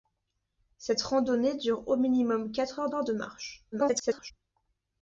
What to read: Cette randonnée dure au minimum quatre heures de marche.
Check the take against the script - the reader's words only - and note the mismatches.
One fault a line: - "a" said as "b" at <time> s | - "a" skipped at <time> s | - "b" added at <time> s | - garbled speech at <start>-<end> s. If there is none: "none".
- "heures" added at 2.9 s
- garbled speech at 3.7-4.3 s